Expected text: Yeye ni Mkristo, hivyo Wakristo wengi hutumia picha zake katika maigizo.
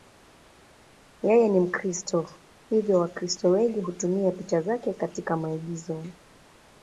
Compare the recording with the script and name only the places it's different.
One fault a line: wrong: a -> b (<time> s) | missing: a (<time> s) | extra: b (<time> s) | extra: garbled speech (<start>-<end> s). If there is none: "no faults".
no faults